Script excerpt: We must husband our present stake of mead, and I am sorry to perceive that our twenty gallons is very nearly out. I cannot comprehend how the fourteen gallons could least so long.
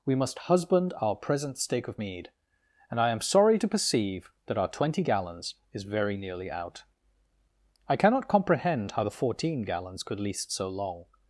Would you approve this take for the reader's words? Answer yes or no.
yes